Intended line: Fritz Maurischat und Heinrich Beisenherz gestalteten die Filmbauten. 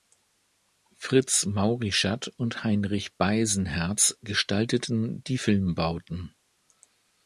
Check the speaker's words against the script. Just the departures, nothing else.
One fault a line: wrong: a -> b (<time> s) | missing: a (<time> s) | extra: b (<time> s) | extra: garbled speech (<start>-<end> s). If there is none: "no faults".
no faults